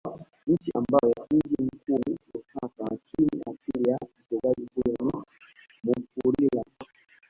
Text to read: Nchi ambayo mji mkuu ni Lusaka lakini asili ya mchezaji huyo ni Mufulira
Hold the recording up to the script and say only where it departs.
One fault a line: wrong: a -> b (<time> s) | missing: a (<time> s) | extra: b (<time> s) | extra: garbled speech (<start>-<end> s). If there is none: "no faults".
no faults